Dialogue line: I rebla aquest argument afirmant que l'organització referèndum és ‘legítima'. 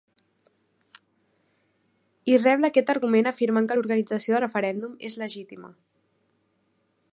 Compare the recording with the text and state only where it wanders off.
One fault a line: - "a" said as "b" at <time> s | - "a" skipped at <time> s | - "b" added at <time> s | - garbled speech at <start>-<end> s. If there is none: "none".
none